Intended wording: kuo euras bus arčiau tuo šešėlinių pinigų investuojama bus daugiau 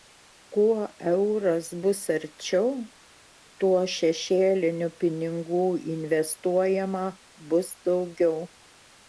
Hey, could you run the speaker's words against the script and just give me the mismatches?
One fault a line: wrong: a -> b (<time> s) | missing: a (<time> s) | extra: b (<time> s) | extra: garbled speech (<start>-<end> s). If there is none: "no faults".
no faults